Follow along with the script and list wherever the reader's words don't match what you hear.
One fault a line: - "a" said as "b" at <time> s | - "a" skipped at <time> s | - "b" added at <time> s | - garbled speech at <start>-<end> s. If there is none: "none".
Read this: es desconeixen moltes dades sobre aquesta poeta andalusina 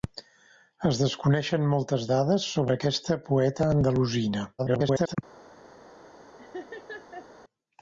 - garbled speech at 4.6-5.2 s